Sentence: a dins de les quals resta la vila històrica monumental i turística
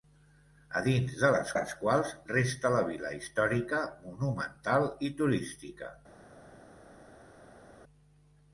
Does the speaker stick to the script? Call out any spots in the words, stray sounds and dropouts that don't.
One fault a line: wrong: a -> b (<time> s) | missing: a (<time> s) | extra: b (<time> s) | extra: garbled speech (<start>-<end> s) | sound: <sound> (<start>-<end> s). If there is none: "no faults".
extra: les (1.6 s)